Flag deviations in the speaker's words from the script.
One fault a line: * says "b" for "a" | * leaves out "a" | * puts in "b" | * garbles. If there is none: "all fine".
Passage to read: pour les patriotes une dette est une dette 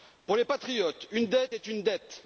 all fine